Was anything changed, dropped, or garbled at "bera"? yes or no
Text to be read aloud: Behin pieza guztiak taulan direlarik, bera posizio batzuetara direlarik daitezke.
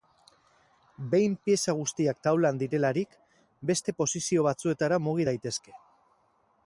yes